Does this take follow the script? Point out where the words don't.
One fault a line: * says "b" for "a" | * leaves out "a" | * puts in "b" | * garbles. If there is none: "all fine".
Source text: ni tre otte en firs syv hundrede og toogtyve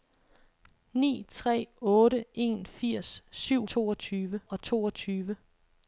* says "toogtyve" for "hundrede"